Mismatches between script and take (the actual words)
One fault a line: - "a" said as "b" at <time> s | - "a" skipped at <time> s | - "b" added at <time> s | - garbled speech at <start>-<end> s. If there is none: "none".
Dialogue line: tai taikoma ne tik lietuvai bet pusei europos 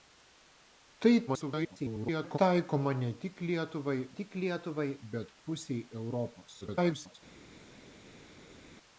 - garbled speech at 1.3-2.4 s
- "tik lietuvai" added at 4.2 s
- garbled speech at 6.6-7.1 s